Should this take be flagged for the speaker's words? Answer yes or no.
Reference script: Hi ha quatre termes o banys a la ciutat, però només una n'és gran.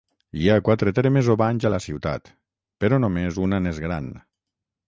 no